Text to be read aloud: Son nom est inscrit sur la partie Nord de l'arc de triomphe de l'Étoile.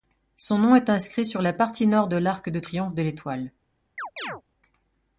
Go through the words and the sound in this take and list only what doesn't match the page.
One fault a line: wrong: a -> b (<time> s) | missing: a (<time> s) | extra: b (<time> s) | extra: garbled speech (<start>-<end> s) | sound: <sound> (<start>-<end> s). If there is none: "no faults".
sound: chirp (4.0-4.4 s)